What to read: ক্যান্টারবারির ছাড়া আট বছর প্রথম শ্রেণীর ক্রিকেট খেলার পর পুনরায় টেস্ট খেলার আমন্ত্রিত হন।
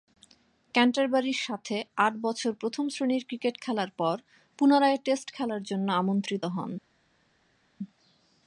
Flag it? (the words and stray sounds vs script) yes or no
yes